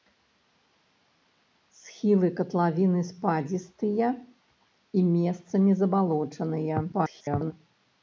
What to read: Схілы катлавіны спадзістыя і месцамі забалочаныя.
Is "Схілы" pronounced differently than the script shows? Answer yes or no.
no